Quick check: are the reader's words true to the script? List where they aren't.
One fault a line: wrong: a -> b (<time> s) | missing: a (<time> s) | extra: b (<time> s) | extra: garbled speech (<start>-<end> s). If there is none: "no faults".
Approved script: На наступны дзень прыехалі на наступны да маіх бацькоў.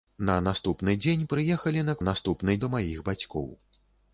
no faults